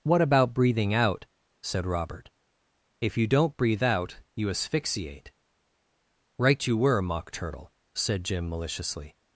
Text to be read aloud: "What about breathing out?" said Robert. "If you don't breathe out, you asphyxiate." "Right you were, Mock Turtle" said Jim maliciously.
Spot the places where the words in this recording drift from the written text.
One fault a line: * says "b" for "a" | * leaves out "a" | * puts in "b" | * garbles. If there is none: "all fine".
all fine